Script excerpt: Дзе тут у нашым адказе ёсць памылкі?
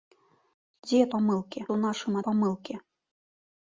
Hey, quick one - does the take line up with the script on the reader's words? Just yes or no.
no